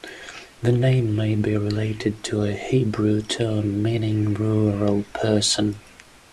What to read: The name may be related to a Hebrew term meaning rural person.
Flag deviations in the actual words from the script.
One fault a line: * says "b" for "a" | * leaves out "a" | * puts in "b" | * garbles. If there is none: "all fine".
all fine